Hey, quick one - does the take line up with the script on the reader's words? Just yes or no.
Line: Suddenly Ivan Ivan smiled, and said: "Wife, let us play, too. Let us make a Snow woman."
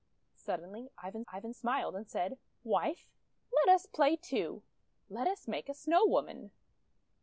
yes